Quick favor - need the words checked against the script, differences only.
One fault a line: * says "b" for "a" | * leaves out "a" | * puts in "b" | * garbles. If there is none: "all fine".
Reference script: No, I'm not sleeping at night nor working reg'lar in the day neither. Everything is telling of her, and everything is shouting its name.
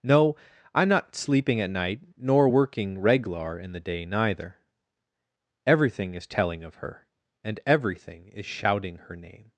* says "her" for "its"